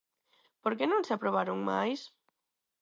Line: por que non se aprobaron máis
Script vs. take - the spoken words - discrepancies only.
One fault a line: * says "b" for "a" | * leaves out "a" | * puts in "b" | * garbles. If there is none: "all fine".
all fine